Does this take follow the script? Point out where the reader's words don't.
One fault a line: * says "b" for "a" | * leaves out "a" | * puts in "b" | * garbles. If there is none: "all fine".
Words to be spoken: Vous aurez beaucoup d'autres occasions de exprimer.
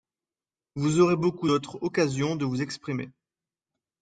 * puts in "vous"